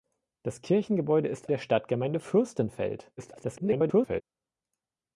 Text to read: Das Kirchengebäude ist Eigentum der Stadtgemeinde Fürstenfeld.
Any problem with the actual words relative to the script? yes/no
yes